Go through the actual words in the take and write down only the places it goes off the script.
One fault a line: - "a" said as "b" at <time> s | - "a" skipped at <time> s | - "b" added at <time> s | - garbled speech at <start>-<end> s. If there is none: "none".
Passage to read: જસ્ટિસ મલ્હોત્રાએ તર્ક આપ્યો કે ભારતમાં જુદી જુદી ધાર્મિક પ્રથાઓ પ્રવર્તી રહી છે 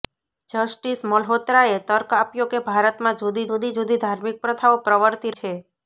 - "જુદી" added at 3.8 s
- "રહી" skipped at 5.4 s